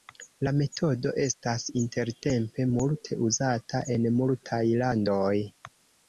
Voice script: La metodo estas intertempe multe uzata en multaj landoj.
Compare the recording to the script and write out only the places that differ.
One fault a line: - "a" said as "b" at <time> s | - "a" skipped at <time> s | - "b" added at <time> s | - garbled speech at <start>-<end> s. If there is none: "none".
none